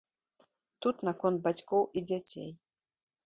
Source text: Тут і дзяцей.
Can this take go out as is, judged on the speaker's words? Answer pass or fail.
fail